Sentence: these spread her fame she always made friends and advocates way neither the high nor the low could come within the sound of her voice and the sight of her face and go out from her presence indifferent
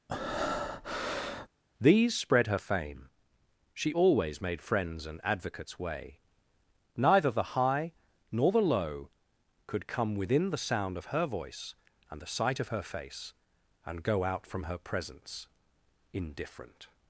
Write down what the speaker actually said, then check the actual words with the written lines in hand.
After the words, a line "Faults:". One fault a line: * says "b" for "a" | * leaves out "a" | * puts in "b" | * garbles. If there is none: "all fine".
these spread her fame she always made friends and advocates way neither the high nor the low could come within the sound of her voice and the sight of her face and go out from her presence indifferent
Faults:
all fine